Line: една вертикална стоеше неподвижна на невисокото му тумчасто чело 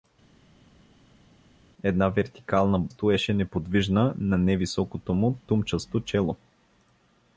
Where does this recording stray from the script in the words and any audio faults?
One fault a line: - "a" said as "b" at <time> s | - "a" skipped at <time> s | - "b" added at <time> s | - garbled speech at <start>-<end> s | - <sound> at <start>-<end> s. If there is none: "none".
none